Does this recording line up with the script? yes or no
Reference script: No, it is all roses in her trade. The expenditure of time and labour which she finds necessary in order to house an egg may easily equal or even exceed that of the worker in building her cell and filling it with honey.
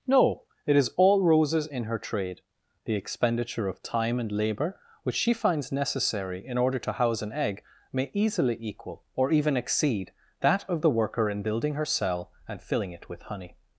yes